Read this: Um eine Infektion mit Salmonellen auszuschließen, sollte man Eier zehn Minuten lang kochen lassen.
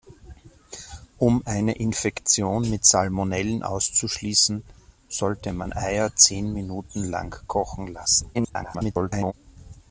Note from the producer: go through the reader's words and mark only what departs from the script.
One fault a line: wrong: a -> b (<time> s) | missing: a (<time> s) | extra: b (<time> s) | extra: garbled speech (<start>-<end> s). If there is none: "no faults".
extra: garbled speech (8.3-9.3 s)